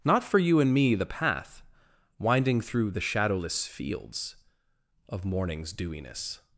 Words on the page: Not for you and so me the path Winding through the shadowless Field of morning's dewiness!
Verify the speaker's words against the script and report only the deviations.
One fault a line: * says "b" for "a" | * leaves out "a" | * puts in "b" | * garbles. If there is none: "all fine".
* leaves out "so"
* says "Fields" for "Field"